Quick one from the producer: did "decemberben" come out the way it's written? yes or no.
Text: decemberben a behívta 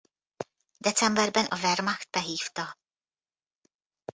yes